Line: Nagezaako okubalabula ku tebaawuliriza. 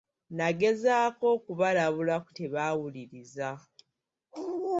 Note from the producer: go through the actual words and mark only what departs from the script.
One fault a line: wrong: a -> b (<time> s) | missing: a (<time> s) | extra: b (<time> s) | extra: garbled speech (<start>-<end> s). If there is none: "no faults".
no faults